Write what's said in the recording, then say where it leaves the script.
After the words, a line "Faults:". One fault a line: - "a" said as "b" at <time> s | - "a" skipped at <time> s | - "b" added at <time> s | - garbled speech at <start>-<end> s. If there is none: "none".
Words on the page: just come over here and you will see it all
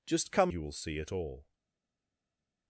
just come you will see it all
Faults:
- "over here and" skipped at 0.5 s